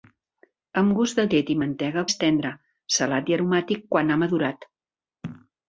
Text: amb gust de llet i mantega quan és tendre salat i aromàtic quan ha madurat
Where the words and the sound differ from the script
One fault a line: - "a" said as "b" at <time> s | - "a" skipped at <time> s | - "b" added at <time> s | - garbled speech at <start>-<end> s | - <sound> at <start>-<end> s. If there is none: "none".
- "quan" skipped at 2.1 s